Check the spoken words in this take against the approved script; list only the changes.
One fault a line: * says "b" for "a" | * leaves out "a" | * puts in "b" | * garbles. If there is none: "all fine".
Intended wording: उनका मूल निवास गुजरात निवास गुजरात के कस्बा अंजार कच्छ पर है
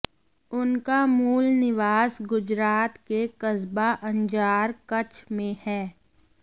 * leaves out "निवास गुजरात"
* says "में" for "पर"